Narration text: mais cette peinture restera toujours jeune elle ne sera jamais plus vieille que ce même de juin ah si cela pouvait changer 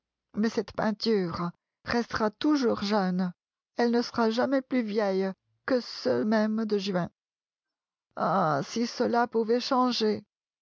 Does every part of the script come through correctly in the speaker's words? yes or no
yes